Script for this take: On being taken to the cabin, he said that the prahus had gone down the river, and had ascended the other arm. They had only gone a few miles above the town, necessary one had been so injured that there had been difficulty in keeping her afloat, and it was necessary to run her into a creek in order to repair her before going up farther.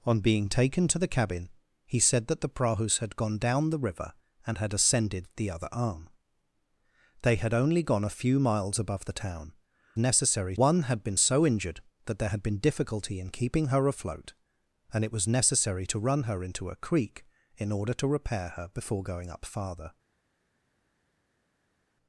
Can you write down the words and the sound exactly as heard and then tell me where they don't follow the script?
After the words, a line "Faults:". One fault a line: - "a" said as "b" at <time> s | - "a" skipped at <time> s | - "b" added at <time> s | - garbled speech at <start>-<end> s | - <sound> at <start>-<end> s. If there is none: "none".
On being taken to the cabin, he said that the prahus had gone down the river, and had ascended the other arm. They had only gone a few miles above the town, necessary one had been so injured that there had been difficulty in keeping her afloat, and it was necessary to run her into a creek in order to repair her before going up farther.
Faults:
none